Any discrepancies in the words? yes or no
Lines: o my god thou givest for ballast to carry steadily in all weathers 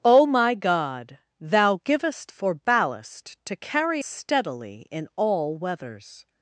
no